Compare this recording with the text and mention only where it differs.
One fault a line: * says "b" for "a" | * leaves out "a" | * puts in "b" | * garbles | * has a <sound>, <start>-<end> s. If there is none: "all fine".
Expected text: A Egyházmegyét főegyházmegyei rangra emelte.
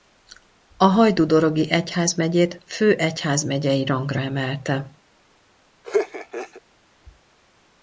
* puts in "Hajdúdorogi"
* has a laugh, 5.8-6.6 s